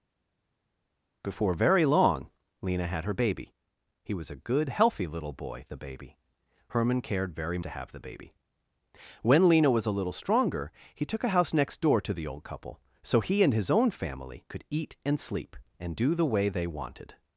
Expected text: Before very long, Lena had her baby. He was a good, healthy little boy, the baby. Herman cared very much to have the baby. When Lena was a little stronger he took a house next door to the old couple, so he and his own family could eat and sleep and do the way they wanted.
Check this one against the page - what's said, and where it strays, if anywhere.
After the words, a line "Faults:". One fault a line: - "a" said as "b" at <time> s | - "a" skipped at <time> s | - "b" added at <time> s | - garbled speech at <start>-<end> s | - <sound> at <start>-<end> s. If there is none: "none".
Before very long, Lena had her baby. He was a good, healthy little boy, the baby. Herman cared very to have the baby. When Lena was a little stronger he took a house next door to the old couple, so he and his own family could eat and sleep and do the way they wanted.
Faults:
- "much" skipped at 7.6 s